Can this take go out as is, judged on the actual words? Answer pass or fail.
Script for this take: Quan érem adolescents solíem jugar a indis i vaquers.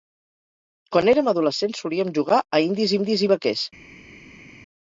fail